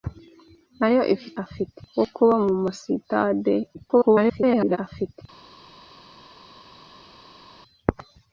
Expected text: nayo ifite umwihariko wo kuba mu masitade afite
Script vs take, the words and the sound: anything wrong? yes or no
yes